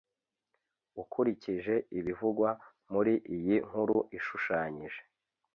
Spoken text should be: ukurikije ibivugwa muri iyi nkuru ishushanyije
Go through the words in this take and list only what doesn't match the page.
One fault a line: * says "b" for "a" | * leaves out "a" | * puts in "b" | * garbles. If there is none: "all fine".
all fine